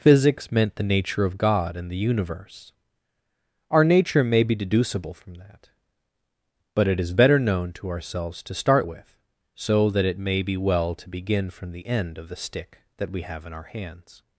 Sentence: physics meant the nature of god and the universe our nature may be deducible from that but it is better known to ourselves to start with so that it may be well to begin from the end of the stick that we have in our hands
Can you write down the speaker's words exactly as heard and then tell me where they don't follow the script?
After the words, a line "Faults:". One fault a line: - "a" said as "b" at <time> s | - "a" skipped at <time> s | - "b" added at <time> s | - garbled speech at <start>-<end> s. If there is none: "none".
physics meant the nature of god and the universe our nature may be deducible from that but it is better known to ourselves to start with so that it may be well to begin from the end of the stick that we have in our hands
Faults:
none